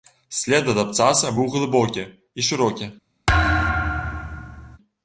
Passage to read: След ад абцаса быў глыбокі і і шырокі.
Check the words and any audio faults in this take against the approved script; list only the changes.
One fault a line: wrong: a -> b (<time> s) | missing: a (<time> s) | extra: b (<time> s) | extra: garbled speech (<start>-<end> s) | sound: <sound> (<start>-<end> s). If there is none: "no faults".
missing: і (2.4 s)
sound: thud (3.3-4.8 s)